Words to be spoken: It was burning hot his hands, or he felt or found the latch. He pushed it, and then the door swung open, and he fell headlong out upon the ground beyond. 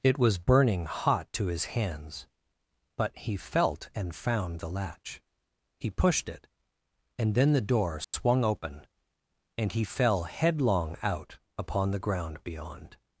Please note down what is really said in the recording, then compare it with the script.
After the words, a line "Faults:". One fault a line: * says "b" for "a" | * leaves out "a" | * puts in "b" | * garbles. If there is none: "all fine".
It was burning hot to his hands, but he felt and found the latch. He pushed it, and then the door swung open, and he fell headlong out upon the ground beyond.
Faults:
* puts in "to"
* says "but" for "or"
* says "and" for "or"